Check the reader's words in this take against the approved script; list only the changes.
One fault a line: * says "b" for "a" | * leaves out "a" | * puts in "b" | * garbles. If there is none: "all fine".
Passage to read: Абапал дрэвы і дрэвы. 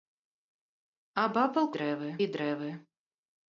all fine